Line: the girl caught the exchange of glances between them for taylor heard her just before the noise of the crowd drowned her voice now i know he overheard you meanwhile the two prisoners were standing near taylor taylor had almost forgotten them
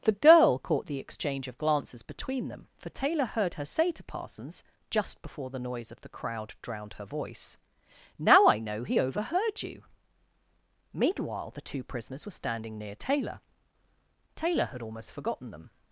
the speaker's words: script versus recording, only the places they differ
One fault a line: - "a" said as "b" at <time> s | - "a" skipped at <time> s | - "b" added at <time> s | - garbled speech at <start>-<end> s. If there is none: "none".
- "say to parsons" added at 3.6 s